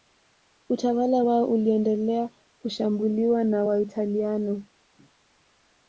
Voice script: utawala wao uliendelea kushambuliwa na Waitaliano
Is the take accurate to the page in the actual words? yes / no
yes